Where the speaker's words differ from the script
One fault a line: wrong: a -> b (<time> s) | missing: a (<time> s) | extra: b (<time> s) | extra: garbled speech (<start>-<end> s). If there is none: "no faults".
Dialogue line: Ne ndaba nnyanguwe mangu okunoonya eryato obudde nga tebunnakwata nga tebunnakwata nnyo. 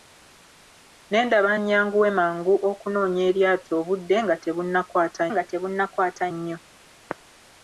no faults